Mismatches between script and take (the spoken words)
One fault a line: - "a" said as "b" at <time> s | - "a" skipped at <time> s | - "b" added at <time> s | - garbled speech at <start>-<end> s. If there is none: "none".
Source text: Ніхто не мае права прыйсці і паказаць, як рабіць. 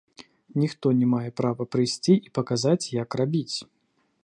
none